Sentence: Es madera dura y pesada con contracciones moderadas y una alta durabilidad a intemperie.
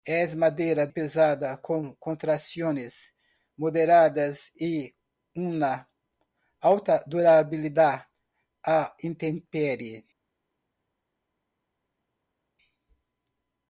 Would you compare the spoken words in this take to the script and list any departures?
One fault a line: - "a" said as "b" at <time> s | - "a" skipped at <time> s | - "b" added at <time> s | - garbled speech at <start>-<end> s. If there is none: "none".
- "dura y" skipped at 0.9 s